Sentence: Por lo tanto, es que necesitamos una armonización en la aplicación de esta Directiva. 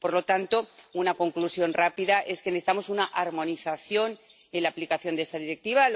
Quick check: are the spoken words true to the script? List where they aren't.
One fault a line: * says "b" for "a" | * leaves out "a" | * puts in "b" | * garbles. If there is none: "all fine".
* puts in "una conclusión rápida"